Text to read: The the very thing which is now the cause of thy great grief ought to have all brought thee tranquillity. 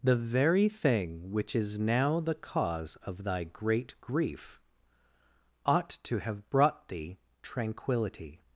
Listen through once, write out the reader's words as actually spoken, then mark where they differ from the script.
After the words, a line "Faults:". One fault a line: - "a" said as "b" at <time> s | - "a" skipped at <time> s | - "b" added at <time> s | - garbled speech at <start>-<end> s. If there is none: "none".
The very thing which is now the cause of thy great grief ought to have brought thee tranquillity.
Faults:
- "the" skipped at 0.1 s
- "all" skipped at 6.5 s